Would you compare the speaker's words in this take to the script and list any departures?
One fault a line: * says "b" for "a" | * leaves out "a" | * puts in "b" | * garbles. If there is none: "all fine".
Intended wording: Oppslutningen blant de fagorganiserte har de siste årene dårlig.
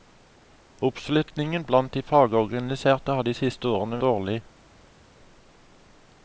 all fine